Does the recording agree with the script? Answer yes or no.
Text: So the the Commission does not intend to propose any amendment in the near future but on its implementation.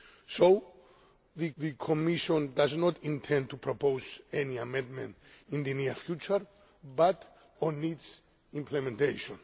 yes